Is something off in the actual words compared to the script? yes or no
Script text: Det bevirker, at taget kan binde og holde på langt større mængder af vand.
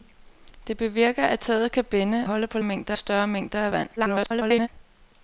yes